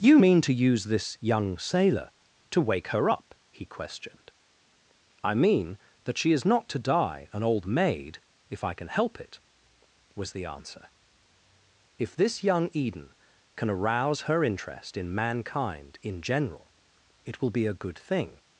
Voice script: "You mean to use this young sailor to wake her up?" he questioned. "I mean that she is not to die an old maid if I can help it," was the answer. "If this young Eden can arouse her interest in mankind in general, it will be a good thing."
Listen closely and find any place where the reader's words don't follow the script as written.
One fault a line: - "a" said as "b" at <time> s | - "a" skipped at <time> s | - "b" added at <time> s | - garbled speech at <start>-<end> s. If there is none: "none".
none